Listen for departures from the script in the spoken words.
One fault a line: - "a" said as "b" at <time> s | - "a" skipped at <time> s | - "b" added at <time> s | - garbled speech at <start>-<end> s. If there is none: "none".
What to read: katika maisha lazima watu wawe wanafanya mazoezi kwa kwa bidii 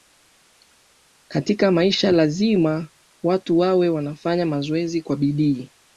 - "kwa" skipped at 5.2 s